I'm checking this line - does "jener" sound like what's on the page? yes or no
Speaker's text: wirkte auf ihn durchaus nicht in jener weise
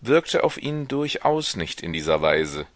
no